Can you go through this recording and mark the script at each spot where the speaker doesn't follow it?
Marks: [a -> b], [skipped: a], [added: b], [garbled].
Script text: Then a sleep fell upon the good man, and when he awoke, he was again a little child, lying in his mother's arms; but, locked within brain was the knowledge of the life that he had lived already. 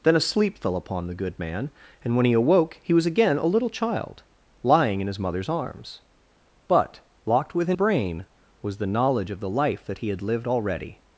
Then a sleep fell upon the good man, and when he awoke, he was again a little child, lying in his mother's arms; but, locked within brain was the knowledge of the life that he had lived already.